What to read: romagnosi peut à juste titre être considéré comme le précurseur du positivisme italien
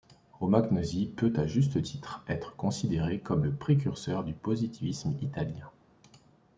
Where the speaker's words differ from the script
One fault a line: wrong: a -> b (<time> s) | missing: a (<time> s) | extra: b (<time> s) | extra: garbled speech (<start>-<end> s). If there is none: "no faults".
no faults